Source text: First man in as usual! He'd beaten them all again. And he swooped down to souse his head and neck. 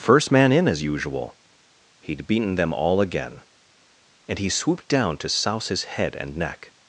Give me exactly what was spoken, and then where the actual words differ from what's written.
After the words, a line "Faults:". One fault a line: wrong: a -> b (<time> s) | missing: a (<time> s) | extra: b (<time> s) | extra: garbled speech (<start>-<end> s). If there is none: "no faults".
First man in as usual! He'd beaten them all again. And he swooped down to souse his head and neck.
Faults:
no faults